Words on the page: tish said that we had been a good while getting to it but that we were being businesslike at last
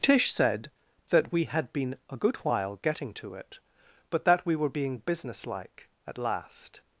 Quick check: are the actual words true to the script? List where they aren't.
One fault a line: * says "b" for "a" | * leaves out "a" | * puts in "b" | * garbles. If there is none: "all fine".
all fine